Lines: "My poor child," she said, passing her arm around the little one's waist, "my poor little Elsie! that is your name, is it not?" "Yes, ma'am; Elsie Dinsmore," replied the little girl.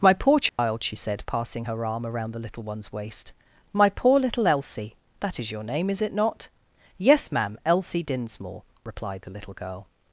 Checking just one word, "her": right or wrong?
right